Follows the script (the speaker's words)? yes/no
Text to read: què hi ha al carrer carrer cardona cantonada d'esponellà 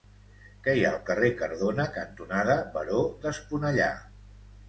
no